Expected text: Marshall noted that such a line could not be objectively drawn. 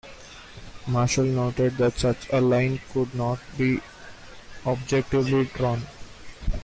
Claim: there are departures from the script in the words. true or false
false